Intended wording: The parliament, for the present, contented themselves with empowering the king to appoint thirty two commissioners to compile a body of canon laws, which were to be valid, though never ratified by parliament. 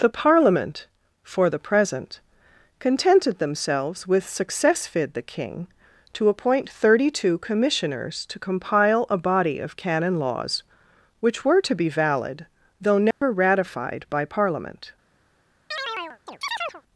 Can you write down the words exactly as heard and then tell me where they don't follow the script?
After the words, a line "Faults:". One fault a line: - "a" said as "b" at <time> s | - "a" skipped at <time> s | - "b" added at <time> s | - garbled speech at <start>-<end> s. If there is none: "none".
The parliament, for the present, contented themselves with successfid the king to appoint thirty two commissioners to compile a body of canon laws, which were to be valid, though never ratified by parliament.
Faults:
- "empowering" said as "successfid" at 4.2 s